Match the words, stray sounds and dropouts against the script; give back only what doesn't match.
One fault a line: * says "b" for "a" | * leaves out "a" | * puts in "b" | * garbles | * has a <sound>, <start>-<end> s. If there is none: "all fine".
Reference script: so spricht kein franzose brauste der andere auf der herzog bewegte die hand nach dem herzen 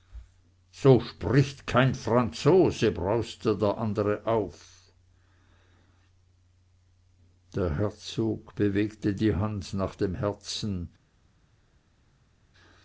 all fine